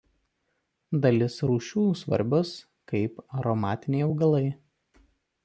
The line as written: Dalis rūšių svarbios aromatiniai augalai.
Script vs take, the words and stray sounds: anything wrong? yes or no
yes